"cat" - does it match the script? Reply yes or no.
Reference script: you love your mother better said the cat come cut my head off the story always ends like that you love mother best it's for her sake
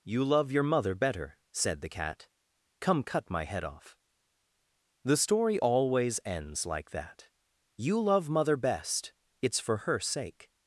yes